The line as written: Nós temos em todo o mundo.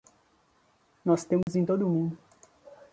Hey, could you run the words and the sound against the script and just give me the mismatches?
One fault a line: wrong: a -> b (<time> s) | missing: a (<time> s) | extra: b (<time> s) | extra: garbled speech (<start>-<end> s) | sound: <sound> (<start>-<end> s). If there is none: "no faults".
sound: dropout (1.4-1.5 s)